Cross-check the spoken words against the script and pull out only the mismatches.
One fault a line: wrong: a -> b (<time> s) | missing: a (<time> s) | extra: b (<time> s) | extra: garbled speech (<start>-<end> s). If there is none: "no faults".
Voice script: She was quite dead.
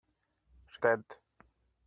missing: was quite (0.8 s)